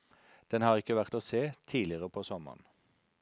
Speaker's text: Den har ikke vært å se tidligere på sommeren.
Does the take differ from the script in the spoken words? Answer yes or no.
no